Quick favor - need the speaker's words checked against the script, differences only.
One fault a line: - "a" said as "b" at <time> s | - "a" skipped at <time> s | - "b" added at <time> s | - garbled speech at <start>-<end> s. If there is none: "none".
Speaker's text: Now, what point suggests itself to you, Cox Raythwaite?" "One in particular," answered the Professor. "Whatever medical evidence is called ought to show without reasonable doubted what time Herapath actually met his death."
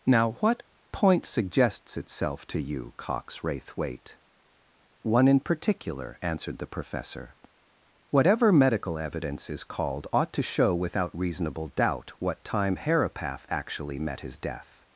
- "doubted" said as "doubt" at 11.7 s